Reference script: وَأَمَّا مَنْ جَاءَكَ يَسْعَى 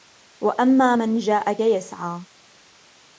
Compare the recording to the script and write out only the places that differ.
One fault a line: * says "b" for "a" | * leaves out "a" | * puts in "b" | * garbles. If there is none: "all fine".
all fine